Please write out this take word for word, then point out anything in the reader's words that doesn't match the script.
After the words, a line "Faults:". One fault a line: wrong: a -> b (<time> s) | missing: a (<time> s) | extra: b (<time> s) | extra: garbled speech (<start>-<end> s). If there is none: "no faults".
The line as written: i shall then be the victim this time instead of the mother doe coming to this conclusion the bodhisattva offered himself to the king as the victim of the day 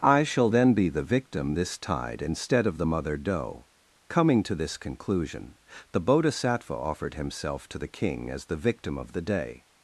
i shall then be the victim this tide instead of the mother doe coming to this conclusion the bodhisattva offered himself to the king as the victim of the day
Faults:
wrong: time -> tide (1.8 s)